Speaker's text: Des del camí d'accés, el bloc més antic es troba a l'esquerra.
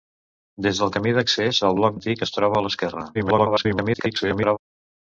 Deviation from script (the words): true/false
true